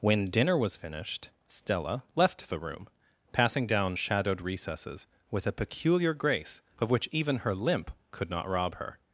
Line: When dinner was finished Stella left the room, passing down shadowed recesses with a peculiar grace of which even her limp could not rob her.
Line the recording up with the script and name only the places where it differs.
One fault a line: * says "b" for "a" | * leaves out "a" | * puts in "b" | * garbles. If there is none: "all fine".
all fine